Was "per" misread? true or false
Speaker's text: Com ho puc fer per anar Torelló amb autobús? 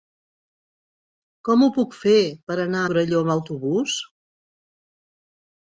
false